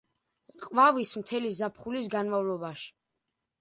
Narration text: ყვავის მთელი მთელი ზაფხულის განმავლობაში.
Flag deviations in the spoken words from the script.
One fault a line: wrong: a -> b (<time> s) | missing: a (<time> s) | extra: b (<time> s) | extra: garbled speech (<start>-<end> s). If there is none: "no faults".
missing: მთელი (1.5 s)